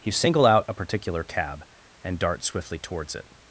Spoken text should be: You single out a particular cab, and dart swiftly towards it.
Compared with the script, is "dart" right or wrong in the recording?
right